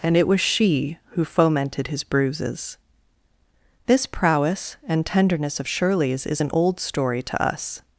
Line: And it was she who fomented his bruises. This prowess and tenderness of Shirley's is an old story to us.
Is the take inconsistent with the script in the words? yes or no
no